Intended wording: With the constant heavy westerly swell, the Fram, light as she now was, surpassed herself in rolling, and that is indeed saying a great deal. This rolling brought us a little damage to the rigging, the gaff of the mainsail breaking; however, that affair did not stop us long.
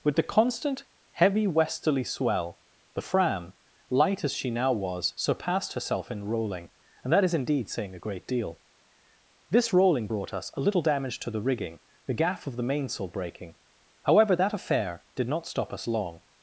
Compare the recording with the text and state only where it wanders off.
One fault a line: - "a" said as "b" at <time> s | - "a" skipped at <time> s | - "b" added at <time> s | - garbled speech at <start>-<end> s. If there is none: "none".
none